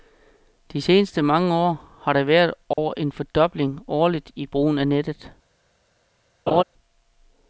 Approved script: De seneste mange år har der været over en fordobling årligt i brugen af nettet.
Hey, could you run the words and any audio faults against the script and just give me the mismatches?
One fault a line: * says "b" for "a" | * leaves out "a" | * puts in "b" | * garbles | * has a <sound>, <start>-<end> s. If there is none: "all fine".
* has a dropout, 2.7-2.8 s
* has a laugh, 6.5-6.6 s